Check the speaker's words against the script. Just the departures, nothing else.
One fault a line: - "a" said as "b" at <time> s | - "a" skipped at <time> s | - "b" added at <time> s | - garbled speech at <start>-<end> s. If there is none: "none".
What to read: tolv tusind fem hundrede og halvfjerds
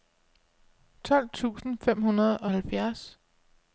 none